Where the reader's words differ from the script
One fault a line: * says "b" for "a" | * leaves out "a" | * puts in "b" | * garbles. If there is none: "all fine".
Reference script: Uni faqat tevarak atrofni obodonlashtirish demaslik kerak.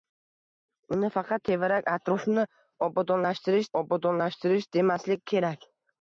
* puts in "obodonlashtirish"